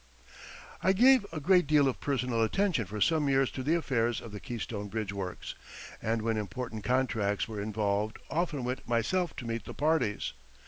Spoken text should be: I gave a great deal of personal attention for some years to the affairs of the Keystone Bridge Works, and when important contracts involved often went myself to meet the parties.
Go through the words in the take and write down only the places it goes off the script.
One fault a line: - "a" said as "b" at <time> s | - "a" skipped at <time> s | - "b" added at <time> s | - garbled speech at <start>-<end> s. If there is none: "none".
- "were" added at 7.5 s